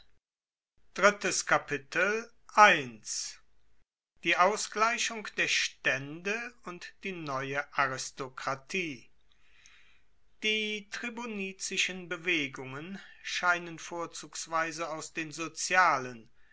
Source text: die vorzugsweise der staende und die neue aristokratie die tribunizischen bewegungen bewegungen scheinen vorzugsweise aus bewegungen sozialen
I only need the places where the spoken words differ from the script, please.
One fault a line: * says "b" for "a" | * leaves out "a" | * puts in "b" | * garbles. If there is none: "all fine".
* says "ausgleichung" for "vorzugsweise"
* leaves out "bewegungen"
* says "den" for "bewegungen"